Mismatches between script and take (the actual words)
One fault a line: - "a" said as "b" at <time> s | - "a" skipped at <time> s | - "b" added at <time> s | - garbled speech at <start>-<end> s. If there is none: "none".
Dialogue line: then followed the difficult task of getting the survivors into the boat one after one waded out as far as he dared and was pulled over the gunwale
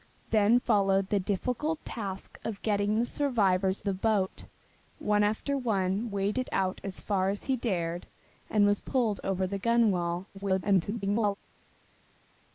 - "into" skipped at 3.8 s
- garbled speech at 10.3-11.3 s